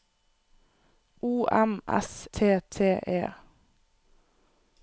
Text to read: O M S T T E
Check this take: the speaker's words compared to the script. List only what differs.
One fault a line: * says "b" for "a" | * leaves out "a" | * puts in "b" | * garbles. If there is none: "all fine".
all fine